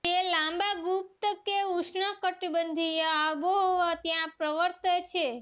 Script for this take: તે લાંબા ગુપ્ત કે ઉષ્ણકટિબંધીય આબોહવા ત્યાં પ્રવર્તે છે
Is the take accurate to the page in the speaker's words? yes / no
yes